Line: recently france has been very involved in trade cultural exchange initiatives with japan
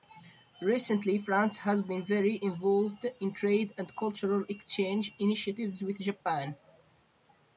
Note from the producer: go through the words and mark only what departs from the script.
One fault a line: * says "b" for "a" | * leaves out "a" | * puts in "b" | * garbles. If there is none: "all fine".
* puts in "and"